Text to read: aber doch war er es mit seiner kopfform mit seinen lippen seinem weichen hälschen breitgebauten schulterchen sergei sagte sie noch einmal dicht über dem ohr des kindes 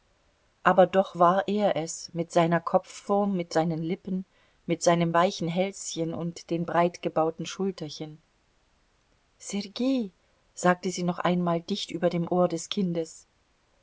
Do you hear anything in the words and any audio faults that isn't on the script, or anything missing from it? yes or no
yes